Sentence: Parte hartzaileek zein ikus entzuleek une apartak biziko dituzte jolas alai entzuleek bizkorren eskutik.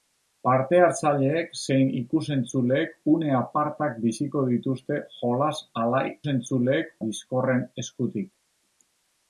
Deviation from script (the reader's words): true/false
false